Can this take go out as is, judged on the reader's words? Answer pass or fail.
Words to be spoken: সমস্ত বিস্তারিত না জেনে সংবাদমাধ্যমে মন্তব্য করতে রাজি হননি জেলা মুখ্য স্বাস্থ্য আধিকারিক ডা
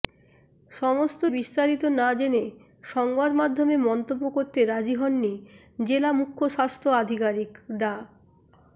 pass